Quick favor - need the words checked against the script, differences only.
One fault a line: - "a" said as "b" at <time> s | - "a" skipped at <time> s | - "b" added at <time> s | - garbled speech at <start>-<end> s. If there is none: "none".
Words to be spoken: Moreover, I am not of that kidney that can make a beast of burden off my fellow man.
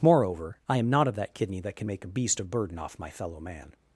none